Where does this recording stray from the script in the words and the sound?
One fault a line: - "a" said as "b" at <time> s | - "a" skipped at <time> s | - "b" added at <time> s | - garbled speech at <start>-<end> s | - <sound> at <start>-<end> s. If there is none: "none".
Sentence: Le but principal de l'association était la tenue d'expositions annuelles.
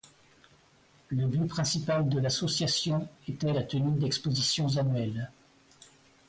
none